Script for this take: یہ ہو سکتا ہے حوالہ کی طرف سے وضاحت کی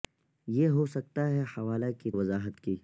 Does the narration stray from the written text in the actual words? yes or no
yes